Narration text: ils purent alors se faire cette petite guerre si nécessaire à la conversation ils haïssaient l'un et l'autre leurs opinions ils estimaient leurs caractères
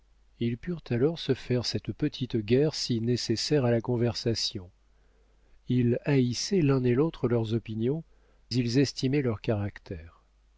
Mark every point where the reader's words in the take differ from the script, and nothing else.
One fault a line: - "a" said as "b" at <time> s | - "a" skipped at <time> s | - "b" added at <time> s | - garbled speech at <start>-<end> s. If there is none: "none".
none